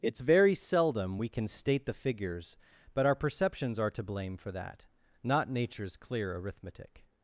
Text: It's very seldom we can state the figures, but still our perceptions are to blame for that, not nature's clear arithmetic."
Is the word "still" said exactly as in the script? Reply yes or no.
no